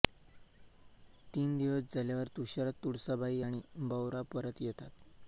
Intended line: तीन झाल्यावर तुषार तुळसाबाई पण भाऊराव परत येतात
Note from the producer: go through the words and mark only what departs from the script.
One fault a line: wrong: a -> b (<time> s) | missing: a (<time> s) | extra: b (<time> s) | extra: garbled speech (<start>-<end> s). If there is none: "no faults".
extra: दिवस (1.6 s)
wrong: पण -> आणि (3.4 s)